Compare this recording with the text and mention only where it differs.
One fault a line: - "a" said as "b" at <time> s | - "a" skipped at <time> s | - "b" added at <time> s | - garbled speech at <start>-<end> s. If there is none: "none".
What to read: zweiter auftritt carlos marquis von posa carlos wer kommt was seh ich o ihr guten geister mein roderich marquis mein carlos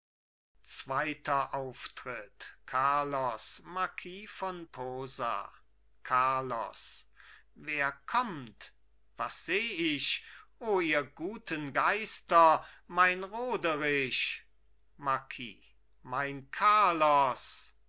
none